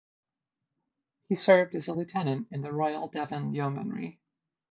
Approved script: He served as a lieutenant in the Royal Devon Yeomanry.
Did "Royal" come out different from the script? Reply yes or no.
no